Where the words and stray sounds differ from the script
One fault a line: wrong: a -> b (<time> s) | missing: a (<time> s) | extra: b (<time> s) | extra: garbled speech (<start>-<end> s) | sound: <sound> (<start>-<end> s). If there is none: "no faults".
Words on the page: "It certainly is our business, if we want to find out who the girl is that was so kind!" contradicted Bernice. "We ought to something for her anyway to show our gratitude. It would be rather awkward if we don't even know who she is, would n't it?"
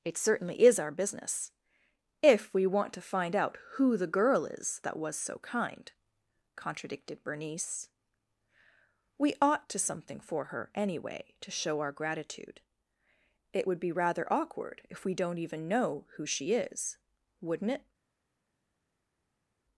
no faults